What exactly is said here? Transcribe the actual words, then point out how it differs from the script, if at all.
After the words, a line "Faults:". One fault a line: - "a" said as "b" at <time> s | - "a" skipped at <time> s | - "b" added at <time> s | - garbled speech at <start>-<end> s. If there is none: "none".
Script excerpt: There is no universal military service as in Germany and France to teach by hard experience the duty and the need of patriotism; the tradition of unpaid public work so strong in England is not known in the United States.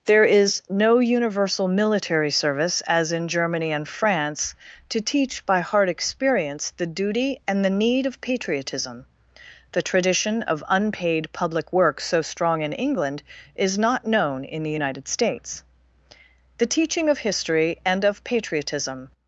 There is no universal military service as in Germany and France to teach by hard experience the duty and the need of patriotism; the tradition of unpaid public work so strong in England is not known in the United States. The teaching of history and of patriotism
Faults:
- "The teaching of history and of patriotism" added at 16.6 s